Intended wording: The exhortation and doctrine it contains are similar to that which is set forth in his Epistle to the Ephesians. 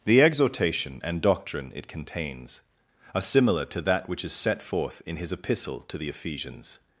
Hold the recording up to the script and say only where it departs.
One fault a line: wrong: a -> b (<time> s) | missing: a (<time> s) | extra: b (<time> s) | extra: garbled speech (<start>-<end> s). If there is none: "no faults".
no faults